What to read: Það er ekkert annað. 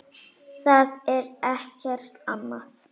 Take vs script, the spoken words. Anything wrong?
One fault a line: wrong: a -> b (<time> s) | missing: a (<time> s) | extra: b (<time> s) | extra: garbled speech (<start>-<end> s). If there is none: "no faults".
no faults